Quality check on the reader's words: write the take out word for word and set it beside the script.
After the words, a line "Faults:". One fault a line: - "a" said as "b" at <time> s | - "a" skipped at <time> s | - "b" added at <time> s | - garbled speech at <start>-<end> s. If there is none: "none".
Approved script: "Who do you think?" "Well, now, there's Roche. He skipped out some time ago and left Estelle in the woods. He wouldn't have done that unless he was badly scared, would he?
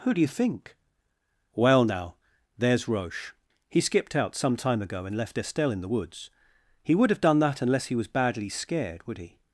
"Who do you think?" "Well, now, there's Roche. He skipped out some time ago and left Estelle in the woods. He would have done that unless he was badly scared, would he?
Faults:
- "wouldn't" said as "would" at 7.0 s